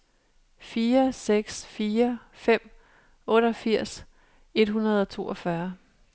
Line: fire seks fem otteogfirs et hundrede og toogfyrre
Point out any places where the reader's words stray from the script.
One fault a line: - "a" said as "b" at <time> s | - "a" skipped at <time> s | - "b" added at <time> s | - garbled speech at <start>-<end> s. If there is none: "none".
- "fire" added at 1.6 s